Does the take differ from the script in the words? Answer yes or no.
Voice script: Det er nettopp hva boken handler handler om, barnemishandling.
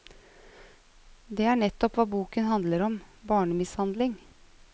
yes